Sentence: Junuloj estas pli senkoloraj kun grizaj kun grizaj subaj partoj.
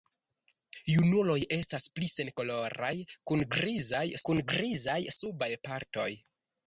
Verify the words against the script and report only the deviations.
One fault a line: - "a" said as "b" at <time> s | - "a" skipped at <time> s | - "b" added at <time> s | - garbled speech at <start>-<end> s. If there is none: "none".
none